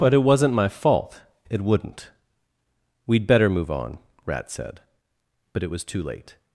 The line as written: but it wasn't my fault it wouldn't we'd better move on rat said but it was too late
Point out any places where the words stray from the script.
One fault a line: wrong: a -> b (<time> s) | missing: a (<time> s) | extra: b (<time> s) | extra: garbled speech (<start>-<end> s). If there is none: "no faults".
no faults